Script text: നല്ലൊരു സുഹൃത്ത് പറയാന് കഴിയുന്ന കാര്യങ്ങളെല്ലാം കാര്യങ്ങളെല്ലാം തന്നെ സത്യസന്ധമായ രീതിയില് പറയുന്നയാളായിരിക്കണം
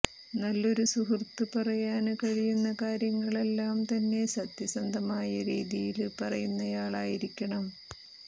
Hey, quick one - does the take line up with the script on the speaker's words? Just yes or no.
no